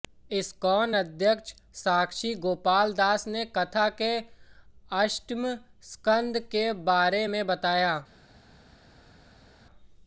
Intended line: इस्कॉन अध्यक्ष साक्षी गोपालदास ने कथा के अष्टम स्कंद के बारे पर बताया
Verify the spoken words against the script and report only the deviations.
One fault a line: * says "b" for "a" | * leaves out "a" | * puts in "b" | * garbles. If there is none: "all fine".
* says "में" for "पर"